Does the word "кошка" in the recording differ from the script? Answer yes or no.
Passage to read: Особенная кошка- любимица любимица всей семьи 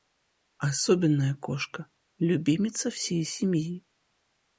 no